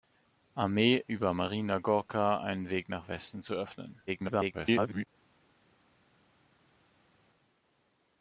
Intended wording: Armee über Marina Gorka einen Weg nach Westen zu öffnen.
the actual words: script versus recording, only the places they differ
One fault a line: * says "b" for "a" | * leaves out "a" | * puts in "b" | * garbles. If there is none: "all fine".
* garbles